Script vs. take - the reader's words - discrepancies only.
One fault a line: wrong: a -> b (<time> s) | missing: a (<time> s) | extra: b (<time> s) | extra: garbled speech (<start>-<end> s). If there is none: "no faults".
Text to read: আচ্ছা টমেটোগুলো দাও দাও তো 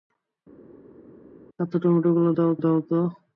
no faults